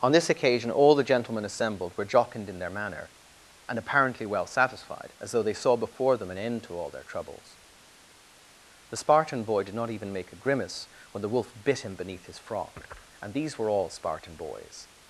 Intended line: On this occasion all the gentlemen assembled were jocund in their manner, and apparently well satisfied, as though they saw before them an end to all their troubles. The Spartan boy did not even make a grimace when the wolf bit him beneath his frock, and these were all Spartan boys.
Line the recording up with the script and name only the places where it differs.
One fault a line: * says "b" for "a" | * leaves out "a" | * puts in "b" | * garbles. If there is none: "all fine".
all fine